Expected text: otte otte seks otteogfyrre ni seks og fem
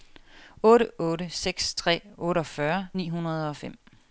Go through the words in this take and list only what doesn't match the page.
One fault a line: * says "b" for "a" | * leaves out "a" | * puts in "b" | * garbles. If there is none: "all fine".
* puts in "tre"
* says "hundrede" for "seks"